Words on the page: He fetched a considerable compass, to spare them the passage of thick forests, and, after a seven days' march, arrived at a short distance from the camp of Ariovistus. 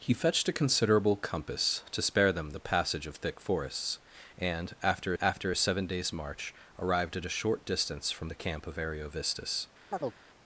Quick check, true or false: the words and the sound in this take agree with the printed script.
false